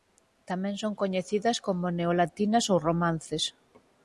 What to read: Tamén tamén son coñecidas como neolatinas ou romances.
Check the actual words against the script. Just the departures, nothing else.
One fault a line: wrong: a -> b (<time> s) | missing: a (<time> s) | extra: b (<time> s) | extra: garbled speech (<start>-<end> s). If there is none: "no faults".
missing: tamén (0.8 s)